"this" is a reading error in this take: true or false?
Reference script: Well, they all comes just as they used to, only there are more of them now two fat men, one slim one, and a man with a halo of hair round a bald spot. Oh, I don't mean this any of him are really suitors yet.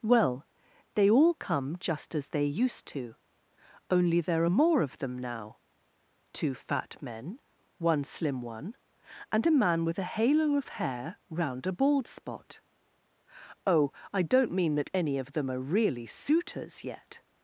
true